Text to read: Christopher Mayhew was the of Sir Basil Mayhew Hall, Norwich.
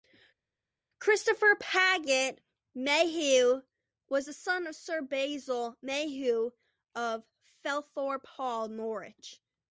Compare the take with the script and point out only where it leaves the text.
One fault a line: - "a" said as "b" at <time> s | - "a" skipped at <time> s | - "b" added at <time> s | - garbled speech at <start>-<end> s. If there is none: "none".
- "Paget" added at 1.6 s
- "son" added at 4.3 s
- "of Felthorpe" added at 7.0 s